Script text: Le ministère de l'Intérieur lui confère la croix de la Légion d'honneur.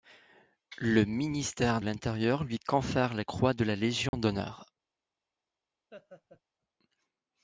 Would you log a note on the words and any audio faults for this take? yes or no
yes